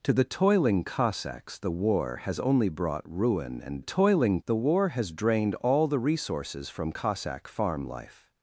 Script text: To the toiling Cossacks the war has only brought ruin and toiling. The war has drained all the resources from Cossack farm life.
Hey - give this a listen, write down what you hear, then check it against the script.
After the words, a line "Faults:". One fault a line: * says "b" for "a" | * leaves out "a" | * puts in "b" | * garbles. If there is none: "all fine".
To the toiling Cossacks the war has only brought ruin and toiling. The war has drained all the resources from Cossack farm life.
Faults:
all fine